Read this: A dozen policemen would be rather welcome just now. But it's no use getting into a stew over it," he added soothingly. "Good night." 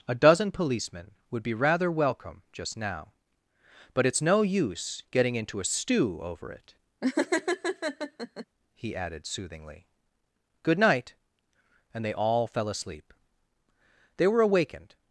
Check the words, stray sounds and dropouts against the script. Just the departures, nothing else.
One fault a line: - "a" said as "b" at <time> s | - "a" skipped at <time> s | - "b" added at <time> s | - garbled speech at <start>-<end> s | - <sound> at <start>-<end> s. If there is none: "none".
- laugh at 7.0-8.5 s
- "And they all fell asleep They were awakened" added at 11.9 s